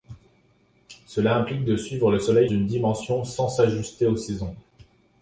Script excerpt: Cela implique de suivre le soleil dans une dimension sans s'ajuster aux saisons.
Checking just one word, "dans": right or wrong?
wrong